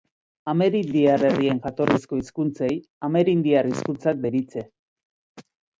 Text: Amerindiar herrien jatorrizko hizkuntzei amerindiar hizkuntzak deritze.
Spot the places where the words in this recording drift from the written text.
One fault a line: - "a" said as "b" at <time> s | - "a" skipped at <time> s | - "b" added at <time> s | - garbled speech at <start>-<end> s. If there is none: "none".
none